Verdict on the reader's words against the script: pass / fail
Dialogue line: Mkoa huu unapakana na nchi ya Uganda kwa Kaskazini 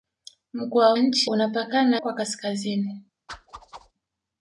fail